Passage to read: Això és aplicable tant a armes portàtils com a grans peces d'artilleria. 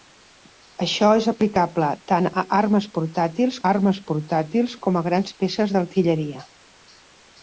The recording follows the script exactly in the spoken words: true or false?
false